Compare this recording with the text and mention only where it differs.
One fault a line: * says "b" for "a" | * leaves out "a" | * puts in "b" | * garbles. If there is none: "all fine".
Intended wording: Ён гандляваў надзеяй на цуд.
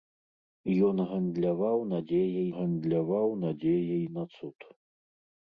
* puts in "гандляваў надзеяй"